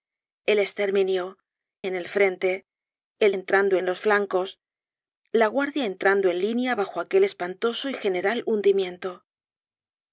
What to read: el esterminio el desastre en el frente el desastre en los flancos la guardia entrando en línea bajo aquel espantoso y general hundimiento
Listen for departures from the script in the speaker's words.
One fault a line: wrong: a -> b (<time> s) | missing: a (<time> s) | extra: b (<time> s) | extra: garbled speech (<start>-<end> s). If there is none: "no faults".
missing: el desastre (1.4 s)
wrong: desastre -> entrando (3.3 s)